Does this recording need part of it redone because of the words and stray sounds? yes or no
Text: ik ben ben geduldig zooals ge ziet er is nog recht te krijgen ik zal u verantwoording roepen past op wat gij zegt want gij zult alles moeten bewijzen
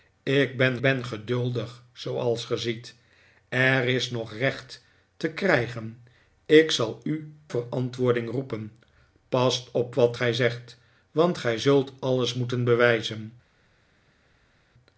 no